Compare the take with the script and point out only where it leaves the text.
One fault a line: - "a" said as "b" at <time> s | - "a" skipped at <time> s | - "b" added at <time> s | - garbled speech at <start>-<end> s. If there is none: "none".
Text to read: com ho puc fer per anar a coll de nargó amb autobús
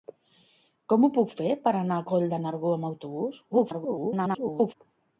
- garbled speech at 3.5-4.7 s